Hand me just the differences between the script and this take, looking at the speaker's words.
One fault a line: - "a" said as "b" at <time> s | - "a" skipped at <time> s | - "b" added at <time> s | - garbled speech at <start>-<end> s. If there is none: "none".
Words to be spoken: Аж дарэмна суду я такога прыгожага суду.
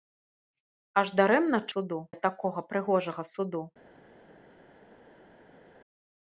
none